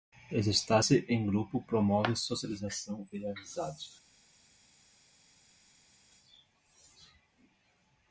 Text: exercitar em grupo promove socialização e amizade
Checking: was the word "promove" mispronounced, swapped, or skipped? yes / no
no